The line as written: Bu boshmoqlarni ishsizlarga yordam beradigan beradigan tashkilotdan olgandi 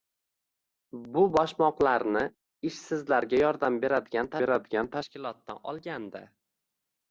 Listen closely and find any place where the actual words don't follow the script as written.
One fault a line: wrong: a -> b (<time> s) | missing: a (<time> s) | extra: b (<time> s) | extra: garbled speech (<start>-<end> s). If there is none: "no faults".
no faults